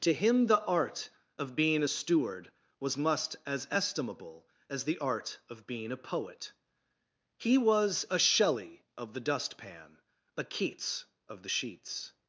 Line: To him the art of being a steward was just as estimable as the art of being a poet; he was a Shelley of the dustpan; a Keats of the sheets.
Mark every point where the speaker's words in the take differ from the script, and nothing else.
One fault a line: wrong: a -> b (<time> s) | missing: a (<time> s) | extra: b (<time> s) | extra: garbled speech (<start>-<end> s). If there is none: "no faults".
wrong: just -> must (3.0 s)